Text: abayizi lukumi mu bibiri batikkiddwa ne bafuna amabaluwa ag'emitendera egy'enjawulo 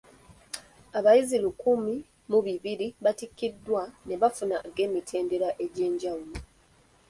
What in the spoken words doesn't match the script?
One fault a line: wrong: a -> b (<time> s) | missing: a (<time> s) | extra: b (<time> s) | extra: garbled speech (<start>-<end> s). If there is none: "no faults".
missing: amabaluwa (4.6 s)